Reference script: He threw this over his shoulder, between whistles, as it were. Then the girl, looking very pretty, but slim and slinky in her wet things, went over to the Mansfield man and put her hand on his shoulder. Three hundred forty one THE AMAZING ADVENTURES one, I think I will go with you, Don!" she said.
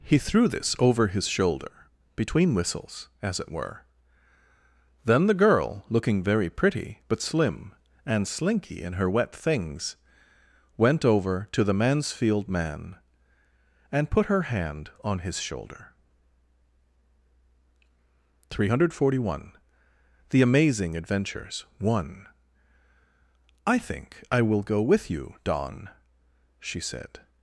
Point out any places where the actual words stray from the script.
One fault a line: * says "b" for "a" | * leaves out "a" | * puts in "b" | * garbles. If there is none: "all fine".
all fine